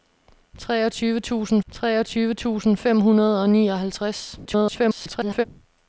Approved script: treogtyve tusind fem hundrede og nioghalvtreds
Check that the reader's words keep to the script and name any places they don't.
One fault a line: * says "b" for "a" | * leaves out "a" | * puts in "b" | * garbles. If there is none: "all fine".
* puts in "treogtyve tusind"
* garbles